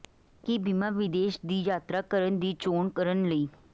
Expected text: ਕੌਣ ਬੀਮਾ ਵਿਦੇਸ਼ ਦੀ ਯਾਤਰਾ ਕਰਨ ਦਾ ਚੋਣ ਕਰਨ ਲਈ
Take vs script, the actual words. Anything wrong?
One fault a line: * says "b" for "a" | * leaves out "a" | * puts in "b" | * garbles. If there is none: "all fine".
* says "ਕੀ" for "ਕੌਣ"
* says "ਦੀ" for "ਦਾ"